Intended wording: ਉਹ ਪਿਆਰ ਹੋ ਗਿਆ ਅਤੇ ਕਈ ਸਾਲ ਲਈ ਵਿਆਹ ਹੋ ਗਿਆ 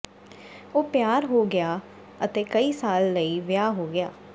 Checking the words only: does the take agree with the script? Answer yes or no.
yes